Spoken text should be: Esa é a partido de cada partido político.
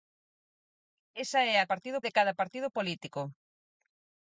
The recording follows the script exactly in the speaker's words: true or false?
true